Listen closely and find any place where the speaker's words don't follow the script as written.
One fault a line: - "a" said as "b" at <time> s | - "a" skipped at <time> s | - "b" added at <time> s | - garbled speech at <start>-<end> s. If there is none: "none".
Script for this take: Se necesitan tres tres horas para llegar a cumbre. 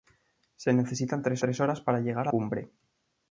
none